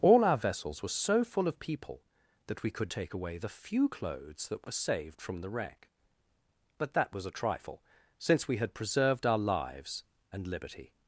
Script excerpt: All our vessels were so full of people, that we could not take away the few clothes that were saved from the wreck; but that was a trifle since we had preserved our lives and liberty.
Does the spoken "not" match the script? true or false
false